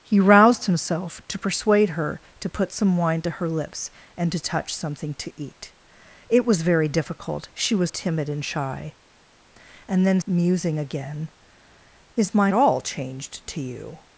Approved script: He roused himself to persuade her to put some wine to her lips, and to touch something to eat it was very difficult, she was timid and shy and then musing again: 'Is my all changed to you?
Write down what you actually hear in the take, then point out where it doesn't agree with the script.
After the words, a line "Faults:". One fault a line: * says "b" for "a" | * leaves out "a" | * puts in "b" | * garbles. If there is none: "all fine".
He roused himself to persuade her to put some wine to her lips, and to touch something to eat it was very difficult, she was timid and shy and then musing again: 'Is my all changed to you?
Faults:
all fine